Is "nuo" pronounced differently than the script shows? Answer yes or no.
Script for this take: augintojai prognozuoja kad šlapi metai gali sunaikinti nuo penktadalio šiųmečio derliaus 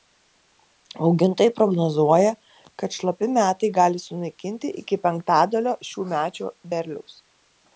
yes